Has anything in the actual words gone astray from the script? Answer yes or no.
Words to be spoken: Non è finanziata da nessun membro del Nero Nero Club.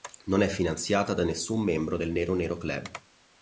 no